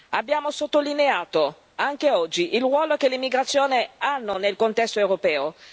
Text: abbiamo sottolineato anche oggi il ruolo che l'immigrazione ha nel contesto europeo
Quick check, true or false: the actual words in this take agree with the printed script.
true